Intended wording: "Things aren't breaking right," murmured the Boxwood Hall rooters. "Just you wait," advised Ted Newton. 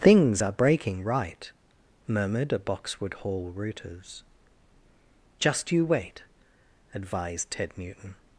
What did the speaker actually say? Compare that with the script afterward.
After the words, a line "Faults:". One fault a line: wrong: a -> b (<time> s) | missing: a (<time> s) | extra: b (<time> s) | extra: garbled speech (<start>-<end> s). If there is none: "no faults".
"Things are breaking right," murmured a Boxwood Hall rooters. "Just you wait," advised Ted Newton.
Faults:
wrong: aren't -> are (0.4 s)
wrong: the -> a (2.5 s)